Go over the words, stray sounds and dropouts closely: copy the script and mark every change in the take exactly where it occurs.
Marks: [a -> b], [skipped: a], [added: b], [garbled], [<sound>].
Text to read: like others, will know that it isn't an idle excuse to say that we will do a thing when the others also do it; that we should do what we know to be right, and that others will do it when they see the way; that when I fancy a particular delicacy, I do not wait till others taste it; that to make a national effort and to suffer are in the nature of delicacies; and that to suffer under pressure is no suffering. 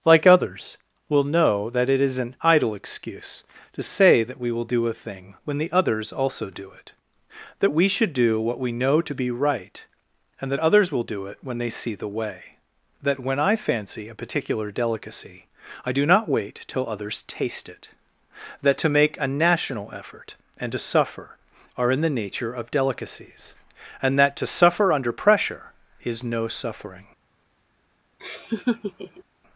like others, will know that it [isn't -> is] an idle excuse to say that we will do a thing when the others also do it; that we should do what we know to be right, and that others will do it when they see the way; that when I fancy a particular delicacy, I do not wait till others taste it; that to make a national effort and to suffer are in the nature of delicacies; and that to suffer under pressure is no suffering. [laugh]